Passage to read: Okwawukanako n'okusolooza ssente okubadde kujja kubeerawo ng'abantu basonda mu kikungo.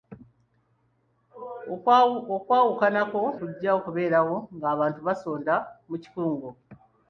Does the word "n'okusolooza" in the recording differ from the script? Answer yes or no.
yes